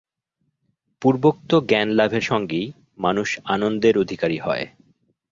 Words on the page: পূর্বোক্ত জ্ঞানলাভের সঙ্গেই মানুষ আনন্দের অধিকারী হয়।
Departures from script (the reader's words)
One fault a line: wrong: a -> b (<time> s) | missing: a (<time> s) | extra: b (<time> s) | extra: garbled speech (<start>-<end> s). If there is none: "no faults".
no faults